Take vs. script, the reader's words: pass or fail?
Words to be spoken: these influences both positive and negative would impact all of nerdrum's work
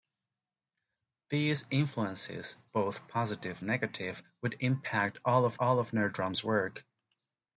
fail